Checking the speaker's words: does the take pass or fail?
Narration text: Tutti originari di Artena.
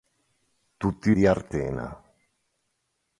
fail